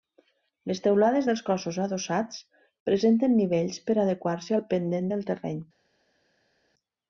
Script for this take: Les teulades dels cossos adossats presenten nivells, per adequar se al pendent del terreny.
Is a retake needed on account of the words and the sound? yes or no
no